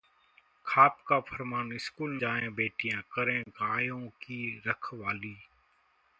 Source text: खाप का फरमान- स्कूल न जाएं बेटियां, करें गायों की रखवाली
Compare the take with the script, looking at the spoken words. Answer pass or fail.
fail